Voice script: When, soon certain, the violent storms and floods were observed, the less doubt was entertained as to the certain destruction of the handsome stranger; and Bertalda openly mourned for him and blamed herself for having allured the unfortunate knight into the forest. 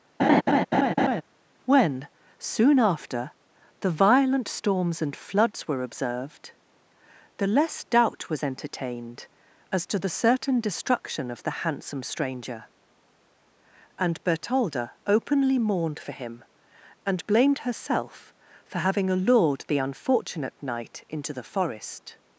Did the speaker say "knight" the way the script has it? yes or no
yes